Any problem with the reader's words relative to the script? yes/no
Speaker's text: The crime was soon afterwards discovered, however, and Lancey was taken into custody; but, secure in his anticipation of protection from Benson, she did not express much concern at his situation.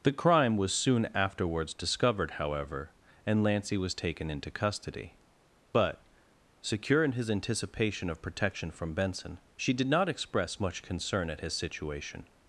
no